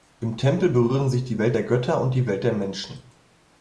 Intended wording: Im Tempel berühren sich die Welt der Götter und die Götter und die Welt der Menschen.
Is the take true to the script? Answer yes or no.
no